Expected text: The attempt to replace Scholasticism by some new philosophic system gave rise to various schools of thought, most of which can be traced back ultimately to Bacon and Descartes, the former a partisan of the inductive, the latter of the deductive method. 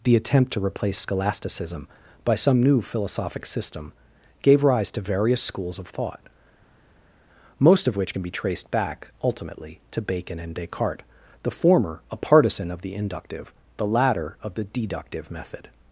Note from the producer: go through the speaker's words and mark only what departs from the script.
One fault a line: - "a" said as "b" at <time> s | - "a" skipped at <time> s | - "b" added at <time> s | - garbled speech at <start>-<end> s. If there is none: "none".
none